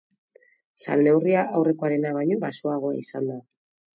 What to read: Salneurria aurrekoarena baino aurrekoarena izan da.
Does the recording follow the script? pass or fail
fail